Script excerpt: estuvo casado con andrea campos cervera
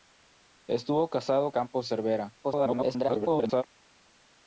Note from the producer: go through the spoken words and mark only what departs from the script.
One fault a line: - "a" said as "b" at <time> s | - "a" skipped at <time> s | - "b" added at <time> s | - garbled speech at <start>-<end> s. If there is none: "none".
- "con andrea" skipped at 1.5 s
- garbled speech at 2.4-3.6 s